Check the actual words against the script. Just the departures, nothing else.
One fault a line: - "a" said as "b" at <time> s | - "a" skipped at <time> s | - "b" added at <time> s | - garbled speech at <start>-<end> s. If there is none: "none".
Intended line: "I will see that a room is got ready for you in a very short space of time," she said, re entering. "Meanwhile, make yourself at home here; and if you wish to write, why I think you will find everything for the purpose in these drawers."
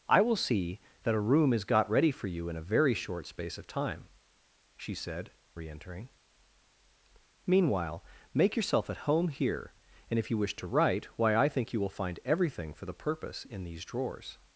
none